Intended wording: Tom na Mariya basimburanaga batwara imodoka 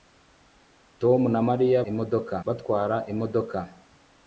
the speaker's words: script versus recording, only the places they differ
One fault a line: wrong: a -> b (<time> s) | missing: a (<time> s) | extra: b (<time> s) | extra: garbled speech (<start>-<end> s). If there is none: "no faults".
wrong: basimburanaga -> imodoka (1.9 s)